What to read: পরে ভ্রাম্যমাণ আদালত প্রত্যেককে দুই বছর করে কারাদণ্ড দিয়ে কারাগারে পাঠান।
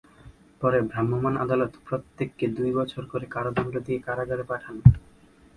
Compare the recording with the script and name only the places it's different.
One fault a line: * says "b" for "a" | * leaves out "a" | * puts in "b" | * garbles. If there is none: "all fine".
all fine